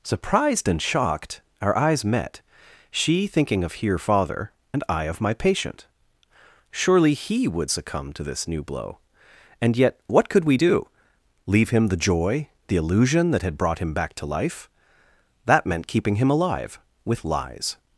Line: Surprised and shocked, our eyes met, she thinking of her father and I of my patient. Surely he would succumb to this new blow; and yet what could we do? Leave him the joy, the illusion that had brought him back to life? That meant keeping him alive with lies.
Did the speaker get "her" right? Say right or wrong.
wrong